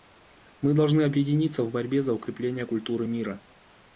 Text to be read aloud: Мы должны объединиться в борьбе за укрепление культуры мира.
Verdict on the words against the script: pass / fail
pass